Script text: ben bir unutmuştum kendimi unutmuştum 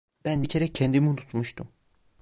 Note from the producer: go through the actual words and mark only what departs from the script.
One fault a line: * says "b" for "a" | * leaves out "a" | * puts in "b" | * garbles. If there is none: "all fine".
* says "kere" for "unutmuştum"